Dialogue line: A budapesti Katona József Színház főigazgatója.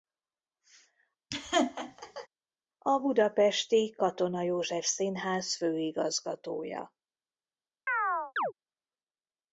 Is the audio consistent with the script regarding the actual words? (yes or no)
yes